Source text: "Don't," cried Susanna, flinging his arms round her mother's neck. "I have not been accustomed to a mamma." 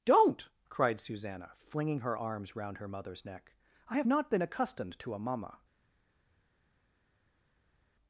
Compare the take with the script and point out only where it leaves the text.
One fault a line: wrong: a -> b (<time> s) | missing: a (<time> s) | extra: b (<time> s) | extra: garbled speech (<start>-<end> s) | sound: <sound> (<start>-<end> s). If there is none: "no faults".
wrong: his -> her (2.0 s)